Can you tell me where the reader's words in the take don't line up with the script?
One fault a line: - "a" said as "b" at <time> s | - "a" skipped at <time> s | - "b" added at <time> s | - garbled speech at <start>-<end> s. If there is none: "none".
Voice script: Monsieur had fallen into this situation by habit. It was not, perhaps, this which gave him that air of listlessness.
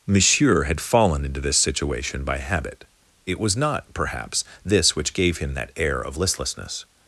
none